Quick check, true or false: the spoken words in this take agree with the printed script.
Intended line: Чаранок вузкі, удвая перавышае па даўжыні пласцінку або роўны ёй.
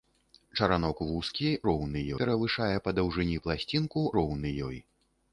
false